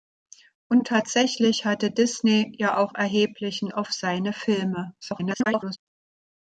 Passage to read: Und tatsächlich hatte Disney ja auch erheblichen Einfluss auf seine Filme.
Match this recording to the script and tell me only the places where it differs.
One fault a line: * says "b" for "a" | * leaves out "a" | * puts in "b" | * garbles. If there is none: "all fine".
* leaves out "Einfluss"
* garbles